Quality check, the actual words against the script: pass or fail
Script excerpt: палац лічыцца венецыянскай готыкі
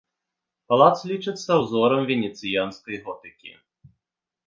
fail